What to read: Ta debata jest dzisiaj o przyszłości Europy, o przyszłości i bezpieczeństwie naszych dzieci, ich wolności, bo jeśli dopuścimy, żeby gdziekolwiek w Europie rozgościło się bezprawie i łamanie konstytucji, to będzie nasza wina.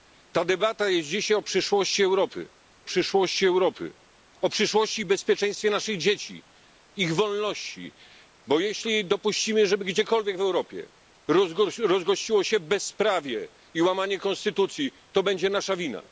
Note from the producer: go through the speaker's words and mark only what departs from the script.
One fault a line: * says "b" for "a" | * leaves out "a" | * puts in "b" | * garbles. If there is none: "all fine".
* puts in "przyszłości Europy"